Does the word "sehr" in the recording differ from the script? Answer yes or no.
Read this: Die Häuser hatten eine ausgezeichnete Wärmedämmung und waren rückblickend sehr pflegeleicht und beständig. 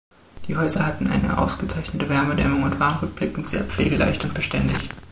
no